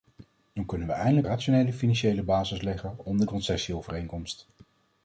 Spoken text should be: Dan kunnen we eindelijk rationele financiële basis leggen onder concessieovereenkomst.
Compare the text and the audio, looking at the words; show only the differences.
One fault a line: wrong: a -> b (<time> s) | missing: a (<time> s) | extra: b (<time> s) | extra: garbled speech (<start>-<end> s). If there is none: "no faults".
no faults